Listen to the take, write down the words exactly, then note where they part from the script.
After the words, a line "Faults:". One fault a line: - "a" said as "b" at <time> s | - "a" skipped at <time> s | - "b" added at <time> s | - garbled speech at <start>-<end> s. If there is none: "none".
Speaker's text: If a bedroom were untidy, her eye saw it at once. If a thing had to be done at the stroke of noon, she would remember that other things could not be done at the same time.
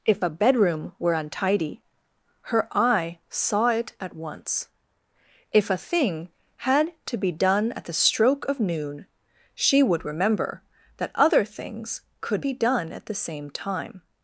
If a bedroom were untidy, her eye saw it at once. If a thing had to be done at the stroke of noon, she would remember that other things could be done at the same time.
Faults:
- "not" skipped at 12.4 s